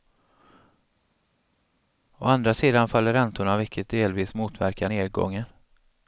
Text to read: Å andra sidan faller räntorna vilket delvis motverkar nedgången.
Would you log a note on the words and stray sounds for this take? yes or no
no